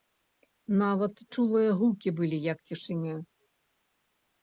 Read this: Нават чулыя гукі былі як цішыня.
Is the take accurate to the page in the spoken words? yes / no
yes